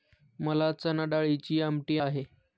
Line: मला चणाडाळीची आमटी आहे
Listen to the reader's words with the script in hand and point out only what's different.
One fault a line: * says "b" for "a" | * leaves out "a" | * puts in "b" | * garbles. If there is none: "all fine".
all fine